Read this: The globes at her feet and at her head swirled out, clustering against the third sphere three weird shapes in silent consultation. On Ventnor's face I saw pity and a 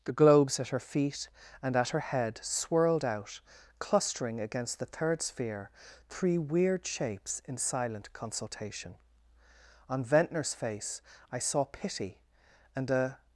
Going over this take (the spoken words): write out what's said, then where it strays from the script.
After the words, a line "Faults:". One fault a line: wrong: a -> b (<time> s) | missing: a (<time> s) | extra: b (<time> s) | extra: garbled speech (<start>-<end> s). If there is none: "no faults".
The globes at her feet and at her head swirled out, clustering against the third sphere three weird shapes in silent consultation. On Ventnor's face I saw pity and a
Faults:
no faults